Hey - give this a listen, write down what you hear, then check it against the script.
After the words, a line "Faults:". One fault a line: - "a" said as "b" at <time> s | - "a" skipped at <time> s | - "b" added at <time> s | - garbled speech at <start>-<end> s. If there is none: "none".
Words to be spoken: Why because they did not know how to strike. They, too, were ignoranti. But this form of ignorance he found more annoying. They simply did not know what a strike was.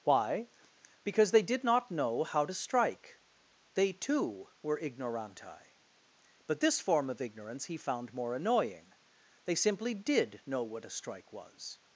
Why because they did not know how to strike. They, too, were ignoranti. But this form of ignorance he found more annoying. They simply did know what a strike was.
Faults:
- "not" skipped at 10.4 s